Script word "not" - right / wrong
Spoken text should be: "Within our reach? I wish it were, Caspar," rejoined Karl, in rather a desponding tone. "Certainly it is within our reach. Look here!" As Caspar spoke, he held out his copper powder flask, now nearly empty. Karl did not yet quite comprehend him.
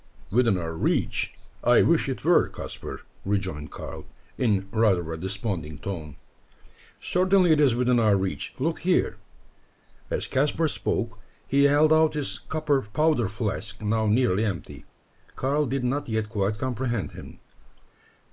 right